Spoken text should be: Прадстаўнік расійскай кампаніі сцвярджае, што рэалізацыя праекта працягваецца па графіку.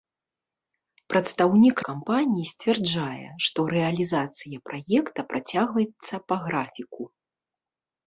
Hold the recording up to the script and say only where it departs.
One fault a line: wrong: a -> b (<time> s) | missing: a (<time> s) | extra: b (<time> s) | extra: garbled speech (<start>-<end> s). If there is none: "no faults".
missing: расійскай (1.8 s)